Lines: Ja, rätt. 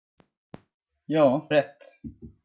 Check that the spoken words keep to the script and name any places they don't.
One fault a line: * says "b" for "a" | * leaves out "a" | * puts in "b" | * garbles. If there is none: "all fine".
all fine